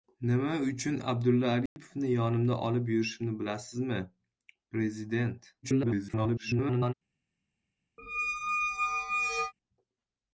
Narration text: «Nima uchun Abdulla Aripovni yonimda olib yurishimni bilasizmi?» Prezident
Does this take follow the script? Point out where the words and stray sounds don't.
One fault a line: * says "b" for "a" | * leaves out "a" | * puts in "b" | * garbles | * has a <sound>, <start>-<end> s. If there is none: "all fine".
* has a dropout, 1.7-1.8 s
* garbles
* has a squeak, 8.0-9.5 s